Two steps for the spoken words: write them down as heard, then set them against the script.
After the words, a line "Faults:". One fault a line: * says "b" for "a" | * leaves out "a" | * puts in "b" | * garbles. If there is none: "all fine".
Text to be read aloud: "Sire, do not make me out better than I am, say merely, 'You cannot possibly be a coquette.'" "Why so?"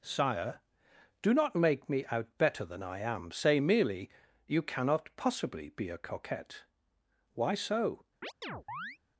"Sire, do not make me out better than I am, say merely, 'You cannot possibly be a coquette.'" "Why so?"
Faults:
all fine